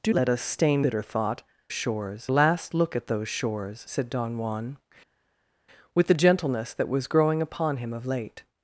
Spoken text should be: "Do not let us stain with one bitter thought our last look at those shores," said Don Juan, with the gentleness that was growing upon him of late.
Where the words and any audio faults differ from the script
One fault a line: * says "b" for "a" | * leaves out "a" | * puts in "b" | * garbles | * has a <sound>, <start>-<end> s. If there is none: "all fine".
* leaves out "not"
* leaves out "with one"
* says "shores" for "our"